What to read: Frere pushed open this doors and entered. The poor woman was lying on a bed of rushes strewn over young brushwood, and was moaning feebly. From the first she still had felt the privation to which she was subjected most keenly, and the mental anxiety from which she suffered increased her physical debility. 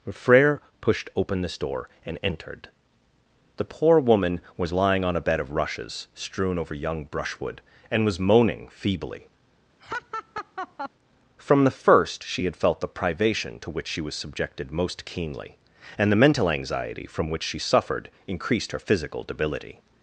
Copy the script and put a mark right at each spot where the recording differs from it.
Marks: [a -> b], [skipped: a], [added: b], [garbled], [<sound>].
Frere pushed open this [doors -> door] and entered. The poor woman was lying on a bed of rushes strewn over young brushwood, and was moaning feebly. [laugh] From the first she [skipped: still] had felt the privation to which she was subjected most keenly, and the mental anxiety from which she suffered increased her physical debility.